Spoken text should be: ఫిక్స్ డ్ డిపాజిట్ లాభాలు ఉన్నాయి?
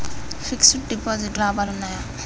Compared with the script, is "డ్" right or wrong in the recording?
right